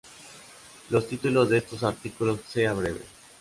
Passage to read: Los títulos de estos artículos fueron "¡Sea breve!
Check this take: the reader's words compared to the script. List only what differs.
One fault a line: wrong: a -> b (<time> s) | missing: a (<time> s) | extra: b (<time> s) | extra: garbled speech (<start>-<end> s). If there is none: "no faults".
missing: fueron (2.4 s)